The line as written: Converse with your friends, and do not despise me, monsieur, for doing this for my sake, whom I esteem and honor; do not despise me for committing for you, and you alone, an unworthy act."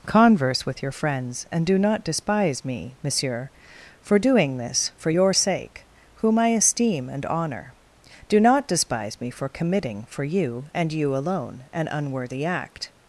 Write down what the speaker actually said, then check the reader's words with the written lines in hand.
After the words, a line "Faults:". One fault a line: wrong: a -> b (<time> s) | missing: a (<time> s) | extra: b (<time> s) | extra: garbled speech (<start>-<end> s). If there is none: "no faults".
Converse with your friends, and do not despise me, monsieur, for doing this for your sake, whom I esteem and honor; do not despise me for committing for you, and you alone, an unworthy act."
Faults:
wrong: my -> your (5.1 s)